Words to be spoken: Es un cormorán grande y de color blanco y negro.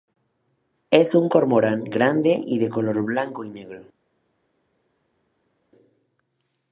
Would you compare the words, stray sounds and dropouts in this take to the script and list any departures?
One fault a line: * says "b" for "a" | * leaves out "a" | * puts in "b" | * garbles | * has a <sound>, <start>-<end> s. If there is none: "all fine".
all fine